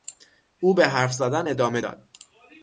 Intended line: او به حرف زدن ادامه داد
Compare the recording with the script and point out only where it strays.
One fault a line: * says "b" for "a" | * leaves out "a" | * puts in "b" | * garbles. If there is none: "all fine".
all fine